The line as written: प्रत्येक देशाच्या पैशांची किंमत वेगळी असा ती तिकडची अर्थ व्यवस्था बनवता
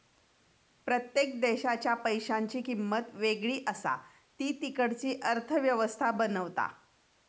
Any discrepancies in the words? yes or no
no